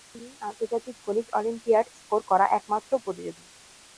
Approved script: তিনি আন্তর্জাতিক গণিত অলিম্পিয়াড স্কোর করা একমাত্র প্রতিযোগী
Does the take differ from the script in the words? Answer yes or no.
no